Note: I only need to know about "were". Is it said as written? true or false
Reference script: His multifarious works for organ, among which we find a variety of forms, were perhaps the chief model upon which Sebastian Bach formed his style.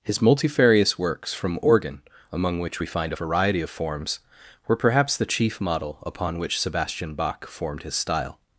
true